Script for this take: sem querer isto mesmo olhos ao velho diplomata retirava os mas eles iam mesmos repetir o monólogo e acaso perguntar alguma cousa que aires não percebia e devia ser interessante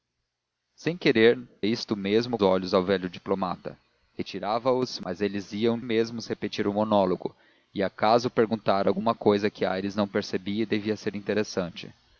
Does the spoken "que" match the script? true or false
true